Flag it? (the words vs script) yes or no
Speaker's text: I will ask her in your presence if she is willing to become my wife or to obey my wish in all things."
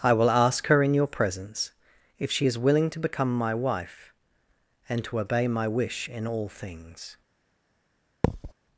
yes